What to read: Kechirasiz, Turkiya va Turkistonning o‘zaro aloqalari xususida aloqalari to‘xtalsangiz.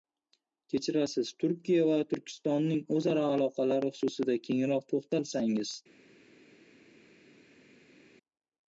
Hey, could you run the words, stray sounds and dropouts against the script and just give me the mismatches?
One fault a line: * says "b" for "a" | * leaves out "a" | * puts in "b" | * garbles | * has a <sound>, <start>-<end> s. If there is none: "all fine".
* says "kengroq" for "aloqalari"